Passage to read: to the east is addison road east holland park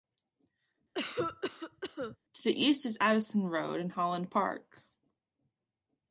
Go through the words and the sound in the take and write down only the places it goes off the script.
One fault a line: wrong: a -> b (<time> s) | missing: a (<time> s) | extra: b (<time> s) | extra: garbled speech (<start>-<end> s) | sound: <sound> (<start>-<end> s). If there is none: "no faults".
sound: cough (0.9-2.2 s)
wrong: east -> and (3.8 s)